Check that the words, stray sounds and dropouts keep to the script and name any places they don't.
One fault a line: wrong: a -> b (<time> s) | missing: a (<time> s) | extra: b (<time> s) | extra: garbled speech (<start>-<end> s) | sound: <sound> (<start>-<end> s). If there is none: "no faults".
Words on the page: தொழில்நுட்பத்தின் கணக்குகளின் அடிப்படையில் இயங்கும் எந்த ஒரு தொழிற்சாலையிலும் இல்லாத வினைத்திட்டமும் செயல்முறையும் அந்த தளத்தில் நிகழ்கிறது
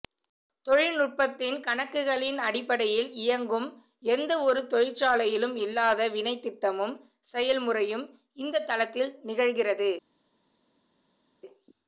wrong: அந்த -> இந்த (8.4 s)